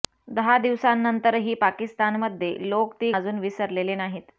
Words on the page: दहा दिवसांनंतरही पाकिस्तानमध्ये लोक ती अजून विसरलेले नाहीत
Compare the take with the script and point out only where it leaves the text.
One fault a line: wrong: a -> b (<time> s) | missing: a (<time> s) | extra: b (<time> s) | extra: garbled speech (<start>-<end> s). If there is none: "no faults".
no faults